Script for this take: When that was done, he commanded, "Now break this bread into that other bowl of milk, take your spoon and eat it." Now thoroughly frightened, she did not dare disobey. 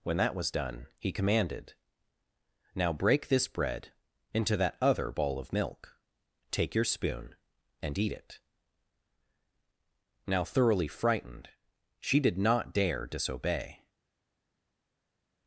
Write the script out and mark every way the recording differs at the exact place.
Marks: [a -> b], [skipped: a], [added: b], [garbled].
When that was done, he commanded, "Now break this bread into that other bowl of milk, take your spoon and eat it." Now thoroughly frightened, she did not dare disobey.